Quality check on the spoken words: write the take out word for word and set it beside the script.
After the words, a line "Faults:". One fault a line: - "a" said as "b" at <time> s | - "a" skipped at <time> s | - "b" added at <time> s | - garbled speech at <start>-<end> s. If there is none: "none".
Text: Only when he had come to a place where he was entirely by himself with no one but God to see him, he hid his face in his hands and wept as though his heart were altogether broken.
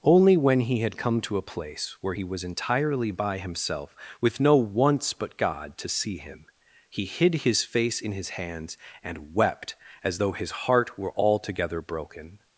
Only when he had come to a place where he was entirely by himself with no once but God to see him, he hid his face in his hands and wept as though his heart were altogether broken.
Faults:
- "one" said as "once" at 4.6 s